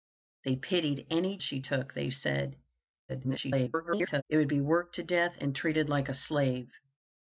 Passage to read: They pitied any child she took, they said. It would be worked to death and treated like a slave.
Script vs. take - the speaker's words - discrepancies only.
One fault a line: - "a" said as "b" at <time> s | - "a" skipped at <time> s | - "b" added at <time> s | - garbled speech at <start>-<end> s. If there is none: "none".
- "child" skipped at 1.4 s
- garbled speech at 3.1-4.2 s